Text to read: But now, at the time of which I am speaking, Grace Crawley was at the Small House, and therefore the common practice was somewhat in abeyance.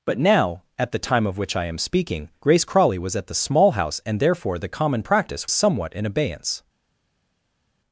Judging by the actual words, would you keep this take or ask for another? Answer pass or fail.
fail